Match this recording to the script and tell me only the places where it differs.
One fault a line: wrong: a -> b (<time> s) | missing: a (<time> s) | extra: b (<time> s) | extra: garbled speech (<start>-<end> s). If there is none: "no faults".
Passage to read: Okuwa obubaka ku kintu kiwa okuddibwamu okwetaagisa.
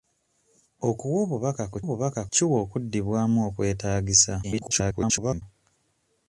wrong: kintu -> obubaka (1.8 s)
extra: garbled speech (4.4-5.4 s)